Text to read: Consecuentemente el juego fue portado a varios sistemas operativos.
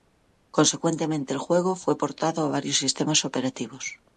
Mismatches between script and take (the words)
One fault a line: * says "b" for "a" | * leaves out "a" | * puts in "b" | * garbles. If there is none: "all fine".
all fine